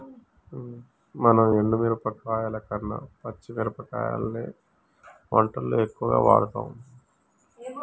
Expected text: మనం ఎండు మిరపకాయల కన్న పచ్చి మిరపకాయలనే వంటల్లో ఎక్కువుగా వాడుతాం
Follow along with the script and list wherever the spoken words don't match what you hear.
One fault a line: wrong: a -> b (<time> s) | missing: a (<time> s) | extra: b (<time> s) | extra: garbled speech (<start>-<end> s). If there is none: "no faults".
no faults